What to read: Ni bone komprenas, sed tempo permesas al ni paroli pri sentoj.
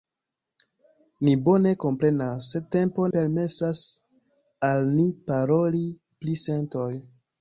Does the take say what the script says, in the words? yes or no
yes